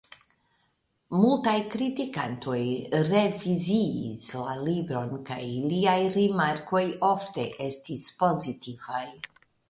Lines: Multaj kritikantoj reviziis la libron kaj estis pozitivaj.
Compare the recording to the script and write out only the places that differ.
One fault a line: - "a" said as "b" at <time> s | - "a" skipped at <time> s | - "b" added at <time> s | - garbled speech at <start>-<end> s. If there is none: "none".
- "iliaj rimarkoj ofte" added at 5.6 s